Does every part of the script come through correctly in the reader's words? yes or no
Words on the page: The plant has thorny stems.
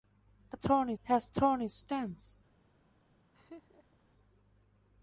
no